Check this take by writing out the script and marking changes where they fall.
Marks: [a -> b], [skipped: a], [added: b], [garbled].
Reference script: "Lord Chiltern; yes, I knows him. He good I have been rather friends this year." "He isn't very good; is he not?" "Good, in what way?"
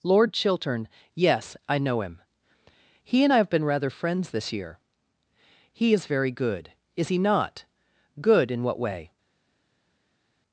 "Lord Chiltern; yes, I [knows -> know] him. He [good -> and] I have been rather friends this year." "He [isn't -> is] very good; is he not?" "Good, in what way?"